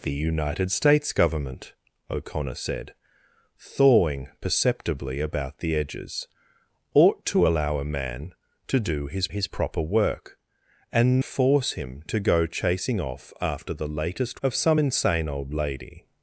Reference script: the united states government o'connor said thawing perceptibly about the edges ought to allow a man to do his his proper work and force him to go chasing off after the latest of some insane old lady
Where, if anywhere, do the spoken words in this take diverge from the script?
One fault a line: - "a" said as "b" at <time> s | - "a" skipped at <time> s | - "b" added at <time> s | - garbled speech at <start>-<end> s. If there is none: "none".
none